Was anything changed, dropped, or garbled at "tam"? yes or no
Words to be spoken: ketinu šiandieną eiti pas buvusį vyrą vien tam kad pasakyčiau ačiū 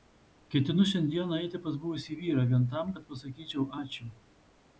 no